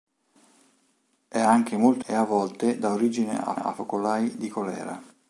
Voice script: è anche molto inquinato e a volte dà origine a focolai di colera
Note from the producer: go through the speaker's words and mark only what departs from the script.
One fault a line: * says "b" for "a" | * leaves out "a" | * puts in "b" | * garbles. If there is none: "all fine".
* leaves out "inquinato"
* puts in "a"